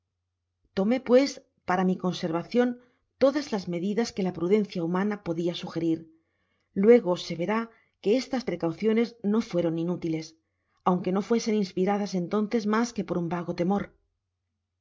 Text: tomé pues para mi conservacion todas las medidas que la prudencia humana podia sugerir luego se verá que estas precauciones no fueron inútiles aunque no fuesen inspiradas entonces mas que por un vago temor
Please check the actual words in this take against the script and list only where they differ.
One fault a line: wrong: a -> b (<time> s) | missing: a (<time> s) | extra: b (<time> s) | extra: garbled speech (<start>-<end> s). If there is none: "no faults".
no faults